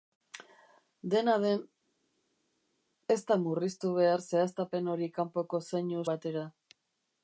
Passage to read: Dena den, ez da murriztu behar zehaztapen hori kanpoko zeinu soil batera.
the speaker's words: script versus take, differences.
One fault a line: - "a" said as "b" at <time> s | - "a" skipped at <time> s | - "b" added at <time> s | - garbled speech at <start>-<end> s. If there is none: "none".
- "soil" skipped at 6.0 s